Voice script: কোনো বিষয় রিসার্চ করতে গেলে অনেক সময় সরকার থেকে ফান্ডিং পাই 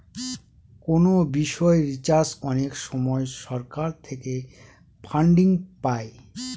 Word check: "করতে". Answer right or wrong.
wrong